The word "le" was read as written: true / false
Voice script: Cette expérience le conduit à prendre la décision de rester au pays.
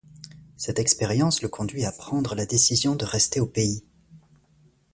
true